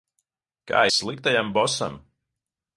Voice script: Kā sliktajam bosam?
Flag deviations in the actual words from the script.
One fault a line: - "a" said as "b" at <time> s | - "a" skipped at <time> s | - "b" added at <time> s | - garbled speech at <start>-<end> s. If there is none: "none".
none